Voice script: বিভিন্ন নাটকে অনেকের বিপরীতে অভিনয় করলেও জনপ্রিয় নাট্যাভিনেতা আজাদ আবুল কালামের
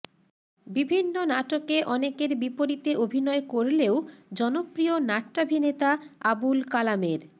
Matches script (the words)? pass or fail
fail